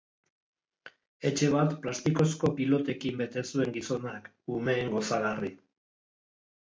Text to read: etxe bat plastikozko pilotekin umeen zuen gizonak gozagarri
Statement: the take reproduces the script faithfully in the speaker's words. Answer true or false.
false